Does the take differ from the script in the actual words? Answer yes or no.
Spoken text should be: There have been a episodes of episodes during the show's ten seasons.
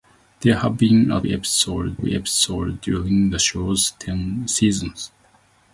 no